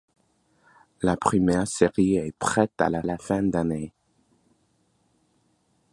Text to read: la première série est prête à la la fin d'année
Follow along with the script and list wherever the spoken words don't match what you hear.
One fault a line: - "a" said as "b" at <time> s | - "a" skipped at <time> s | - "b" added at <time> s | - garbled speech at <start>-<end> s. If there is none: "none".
none